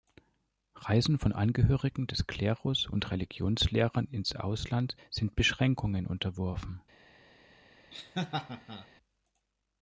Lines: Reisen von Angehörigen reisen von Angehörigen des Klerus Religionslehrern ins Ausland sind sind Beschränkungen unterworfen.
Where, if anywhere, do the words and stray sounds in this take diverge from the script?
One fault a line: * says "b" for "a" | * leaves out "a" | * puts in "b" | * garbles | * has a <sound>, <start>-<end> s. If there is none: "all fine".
* leaves out "reisen von Angehörigen"
* puts in "und"
* leaves out "sind"
* has a laugh, 7.9-8.9 s